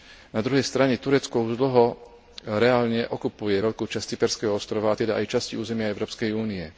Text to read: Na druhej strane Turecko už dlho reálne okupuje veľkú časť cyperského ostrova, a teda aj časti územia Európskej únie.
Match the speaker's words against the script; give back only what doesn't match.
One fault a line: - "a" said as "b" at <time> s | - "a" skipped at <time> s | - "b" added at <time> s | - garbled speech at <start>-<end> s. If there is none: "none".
none